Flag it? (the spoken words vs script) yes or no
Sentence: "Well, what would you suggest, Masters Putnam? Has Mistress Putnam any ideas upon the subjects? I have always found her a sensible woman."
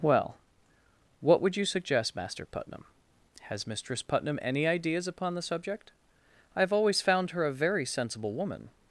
yes